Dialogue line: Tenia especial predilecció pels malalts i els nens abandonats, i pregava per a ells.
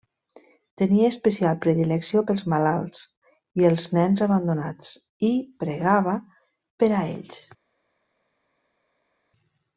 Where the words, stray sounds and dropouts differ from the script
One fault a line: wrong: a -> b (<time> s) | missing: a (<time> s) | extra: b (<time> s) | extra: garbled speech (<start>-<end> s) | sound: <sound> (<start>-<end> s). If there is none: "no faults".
no faults